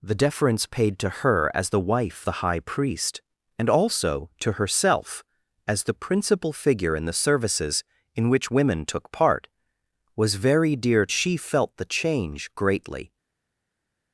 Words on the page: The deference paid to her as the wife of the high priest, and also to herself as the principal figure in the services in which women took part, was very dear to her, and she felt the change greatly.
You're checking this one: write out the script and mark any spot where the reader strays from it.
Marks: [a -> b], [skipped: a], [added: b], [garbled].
The deference paid to her as the wife [skipped: of] the high priest, and also to herself as the principal figure in the services in which women took part, was very dear [skipped: to her, and] she felt the change greatly.